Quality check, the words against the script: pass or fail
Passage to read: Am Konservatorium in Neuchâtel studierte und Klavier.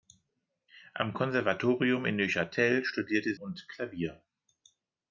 pass